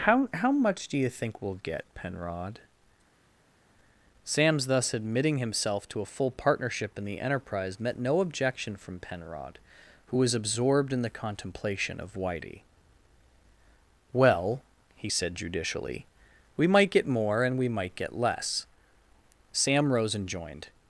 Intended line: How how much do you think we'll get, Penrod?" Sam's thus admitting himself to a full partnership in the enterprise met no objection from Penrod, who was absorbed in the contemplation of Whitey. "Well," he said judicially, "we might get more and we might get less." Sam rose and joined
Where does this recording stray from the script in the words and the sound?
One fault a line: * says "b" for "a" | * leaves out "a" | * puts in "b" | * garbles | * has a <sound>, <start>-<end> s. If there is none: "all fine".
all fine